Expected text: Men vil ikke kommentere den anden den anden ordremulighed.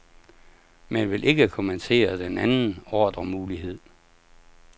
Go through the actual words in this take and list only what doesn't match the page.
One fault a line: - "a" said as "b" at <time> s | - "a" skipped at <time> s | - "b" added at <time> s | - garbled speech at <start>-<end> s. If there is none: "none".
- "den anden" skipped at 2.8 s